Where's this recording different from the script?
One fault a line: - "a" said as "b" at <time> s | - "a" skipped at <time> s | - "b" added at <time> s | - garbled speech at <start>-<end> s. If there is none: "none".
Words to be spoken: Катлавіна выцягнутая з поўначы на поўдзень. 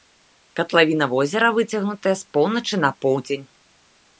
- "возера" added at 1.1 s